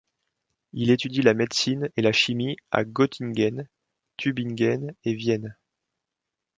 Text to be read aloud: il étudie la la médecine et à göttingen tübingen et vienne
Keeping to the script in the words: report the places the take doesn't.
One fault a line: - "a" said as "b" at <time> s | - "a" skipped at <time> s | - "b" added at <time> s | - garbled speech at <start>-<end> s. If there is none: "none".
- "la" skipped at 1.4 s
- "la chimie" added at 2.0 s